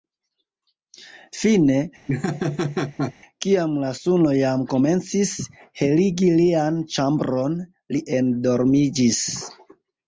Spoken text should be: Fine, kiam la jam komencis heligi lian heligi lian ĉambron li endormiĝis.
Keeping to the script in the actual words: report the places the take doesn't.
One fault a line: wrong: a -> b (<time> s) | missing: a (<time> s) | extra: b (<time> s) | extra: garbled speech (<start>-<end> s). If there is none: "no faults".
extra: suno (4.0 s)
missing: heligi lian (6.8 s)